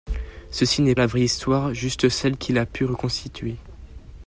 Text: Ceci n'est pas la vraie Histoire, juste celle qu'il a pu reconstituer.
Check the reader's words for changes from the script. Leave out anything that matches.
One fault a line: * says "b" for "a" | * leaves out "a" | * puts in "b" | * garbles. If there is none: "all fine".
* leaves out "pas"